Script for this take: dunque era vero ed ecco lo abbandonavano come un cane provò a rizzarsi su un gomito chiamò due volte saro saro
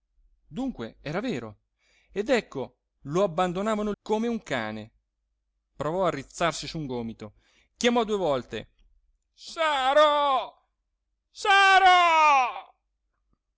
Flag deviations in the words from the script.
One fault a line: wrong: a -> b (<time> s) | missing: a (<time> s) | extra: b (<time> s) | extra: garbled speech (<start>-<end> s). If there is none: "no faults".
no faults